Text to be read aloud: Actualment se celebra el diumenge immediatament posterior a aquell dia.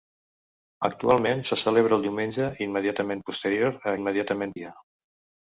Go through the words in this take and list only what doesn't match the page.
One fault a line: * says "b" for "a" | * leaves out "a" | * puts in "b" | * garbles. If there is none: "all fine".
* says "immediatament" for "aquell"